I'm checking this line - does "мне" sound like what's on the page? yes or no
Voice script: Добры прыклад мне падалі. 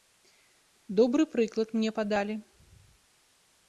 yes